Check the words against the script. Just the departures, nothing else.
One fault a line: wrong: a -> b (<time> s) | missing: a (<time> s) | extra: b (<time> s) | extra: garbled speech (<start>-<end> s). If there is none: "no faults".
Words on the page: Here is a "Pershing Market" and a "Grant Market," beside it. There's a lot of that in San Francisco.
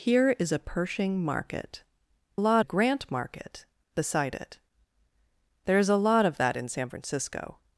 wrong: and -> lot (2.3 s)